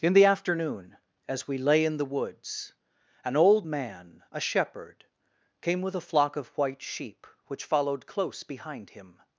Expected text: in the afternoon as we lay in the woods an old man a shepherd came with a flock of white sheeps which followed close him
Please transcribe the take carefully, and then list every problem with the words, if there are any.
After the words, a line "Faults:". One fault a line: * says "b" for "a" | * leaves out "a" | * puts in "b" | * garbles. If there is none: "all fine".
in the afternoon as we lay in the woods an old man a shepherd came with a flock of white sheep which followed close behind him
Faults:
* says "sheep" for "sheeps"
* puts in "behind"